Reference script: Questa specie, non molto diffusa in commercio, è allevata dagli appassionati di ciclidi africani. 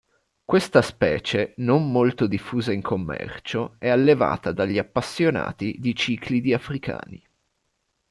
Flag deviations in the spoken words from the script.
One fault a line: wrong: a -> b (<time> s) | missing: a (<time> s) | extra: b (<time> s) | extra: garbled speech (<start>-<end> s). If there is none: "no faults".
no faults